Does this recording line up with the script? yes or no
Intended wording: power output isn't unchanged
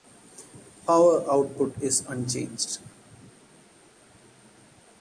no